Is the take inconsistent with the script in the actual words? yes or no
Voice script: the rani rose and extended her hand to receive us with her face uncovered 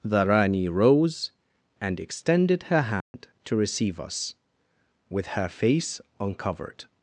no